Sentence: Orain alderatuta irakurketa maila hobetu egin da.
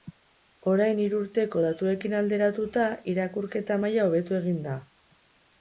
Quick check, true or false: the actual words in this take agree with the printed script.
false